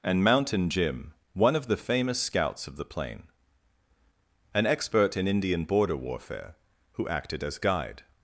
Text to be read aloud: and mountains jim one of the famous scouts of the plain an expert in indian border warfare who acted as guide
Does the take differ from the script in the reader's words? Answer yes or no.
yes